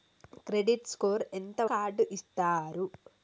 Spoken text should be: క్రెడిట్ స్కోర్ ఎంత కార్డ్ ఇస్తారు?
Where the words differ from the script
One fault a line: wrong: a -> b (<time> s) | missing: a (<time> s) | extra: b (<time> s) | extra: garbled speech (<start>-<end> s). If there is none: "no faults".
no faults